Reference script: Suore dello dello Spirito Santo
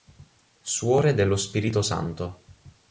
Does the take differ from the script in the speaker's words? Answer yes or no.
yes